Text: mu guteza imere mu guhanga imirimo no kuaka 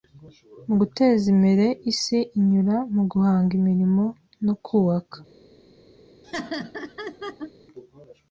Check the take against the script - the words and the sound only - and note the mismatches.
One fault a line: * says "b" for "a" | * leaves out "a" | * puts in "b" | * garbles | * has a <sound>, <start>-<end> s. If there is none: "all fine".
* puts in "isi inyura"
* has a laugh, 6.2-7.5 s